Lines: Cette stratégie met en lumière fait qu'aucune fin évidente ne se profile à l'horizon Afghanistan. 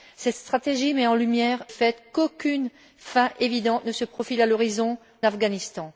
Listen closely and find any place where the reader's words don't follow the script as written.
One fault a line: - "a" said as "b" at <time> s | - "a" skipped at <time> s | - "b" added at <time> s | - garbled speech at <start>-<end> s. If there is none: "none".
none